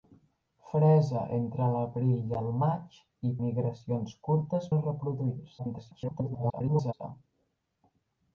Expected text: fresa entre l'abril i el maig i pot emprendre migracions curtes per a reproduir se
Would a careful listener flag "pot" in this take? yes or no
yes